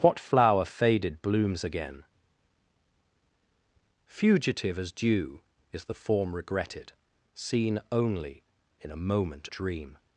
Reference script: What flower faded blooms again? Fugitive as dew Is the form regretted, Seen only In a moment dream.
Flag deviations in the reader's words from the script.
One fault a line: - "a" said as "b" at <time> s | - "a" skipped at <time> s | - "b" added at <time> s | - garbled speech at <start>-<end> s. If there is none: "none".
none